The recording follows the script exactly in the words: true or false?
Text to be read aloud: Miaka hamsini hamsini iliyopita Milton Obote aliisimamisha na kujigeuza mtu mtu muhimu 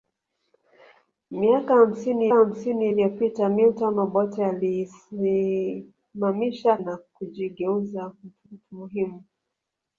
true